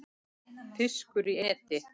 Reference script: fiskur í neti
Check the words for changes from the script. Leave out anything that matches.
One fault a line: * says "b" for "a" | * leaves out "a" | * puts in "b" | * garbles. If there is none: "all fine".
all fine